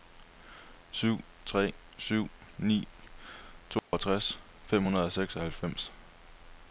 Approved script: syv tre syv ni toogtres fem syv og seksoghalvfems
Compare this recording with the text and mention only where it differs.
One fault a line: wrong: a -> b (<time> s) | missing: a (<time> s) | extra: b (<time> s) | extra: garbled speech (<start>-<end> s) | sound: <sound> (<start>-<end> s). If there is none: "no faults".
sound: dropout (3.8-3.9 s)
wrong: syv -> hundrede (4.8 s)